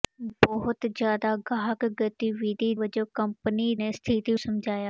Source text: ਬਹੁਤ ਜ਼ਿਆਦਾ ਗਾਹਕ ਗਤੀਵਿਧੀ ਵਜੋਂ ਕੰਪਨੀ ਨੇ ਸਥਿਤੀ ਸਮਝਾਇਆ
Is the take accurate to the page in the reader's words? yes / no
yes